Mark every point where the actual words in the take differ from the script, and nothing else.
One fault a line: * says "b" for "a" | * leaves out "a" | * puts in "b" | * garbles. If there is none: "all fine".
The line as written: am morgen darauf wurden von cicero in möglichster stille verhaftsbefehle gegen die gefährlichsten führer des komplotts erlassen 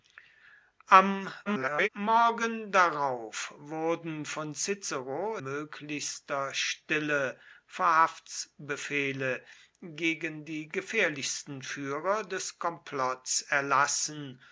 * garbles
* leaves out "in"